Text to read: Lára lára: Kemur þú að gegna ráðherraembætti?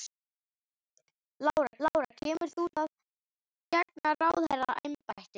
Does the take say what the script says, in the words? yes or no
yes